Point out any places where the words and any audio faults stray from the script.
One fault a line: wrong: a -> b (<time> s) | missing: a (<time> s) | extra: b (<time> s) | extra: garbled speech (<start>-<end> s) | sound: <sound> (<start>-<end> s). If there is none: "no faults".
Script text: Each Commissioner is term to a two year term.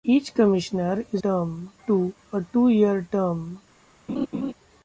sound: laugh (4.1-4.5 s)